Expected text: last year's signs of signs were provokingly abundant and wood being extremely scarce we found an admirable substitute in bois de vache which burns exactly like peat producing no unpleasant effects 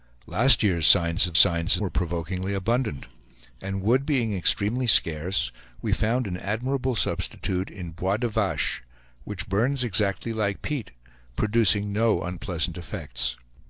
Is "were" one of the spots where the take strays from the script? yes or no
no